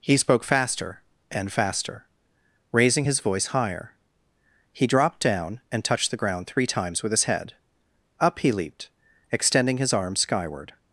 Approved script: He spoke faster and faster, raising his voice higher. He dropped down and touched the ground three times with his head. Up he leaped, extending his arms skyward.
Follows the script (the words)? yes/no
yes